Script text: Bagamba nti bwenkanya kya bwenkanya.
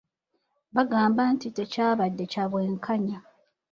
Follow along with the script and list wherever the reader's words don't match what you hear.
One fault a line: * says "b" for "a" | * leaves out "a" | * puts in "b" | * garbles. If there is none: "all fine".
* says "tekyabadde" for "bwenkanya"